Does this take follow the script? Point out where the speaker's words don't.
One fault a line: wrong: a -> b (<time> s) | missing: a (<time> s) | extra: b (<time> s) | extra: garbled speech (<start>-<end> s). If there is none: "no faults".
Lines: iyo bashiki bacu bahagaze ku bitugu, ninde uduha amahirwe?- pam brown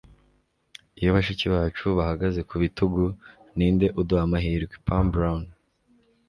no faults